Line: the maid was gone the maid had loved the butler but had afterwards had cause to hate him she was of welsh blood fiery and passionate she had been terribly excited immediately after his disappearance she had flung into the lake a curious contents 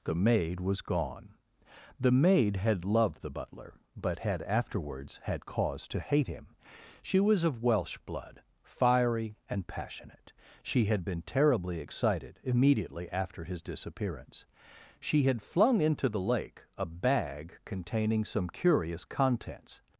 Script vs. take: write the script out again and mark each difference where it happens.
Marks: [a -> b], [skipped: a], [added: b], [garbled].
the maid was gone the maid had loved the butler but had afterwards had cause to hate him she was of welsh blood fiery and passionate she had been terribly excited immediately after his disappearance she had flung into the lake a [added: bag containing some] curious contents